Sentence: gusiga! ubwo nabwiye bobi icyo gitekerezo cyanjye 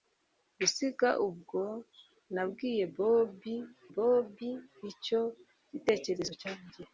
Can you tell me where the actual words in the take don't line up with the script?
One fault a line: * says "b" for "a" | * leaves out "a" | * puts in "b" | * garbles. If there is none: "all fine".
* puts in "bobi"